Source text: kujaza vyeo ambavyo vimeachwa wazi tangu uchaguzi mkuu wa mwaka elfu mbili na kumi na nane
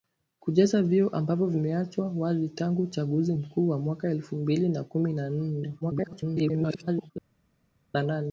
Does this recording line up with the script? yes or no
no